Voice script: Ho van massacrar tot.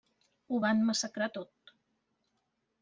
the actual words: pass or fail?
pass